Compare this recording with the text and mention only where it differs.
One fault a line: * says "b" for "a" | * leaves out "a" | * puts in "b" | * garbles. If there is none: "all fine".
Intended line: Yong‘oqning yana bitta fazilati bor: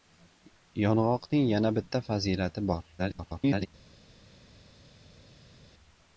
* garbles